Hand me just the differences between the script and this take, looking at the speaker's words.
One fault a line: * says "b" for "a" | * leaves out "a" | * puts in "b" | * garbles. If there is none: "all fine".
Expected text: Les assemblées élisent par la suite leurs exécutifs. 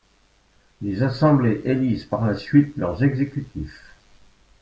all fine